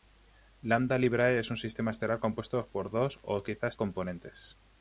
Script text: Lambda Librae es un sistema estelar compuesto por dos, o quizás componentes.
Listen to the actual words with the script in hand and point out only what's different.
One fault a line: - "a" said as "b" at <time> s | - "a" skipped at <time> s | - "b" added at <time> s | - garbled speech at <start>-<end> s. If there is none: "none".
none